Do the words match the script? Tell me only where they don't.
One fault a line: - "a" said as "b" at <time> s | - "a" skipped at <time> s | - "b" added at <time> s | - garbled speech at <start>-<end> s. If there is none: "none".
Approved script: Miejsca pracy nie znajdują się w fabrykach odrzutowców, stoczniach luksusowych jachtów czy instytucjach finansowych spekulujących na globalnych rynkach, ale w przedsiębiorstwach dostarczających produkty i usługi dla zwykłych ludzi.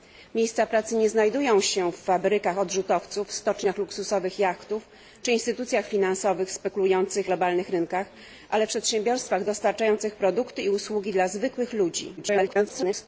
- "na" skipped at 7.3 s
- garbled speech at 12.2-13.1 s